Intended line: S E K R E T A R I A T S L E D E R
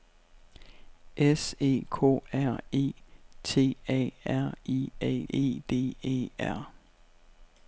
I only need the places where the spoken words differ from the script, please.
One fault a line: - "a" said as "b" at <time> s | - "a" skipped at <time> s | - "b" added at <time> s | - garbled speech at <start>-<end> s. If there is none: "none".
- "T S L" skipped at 5.2 s